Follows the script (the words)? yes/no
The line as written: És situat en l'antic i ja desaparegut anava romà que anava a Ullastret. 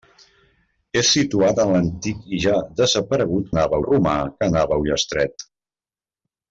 yes